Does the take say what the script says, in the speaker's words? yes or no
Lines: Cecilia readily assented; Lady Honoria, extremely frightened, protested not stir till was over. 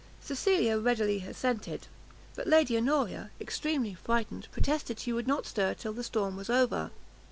no